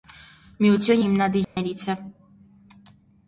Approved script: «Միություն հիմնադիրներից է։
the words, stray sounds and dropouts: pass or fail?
fail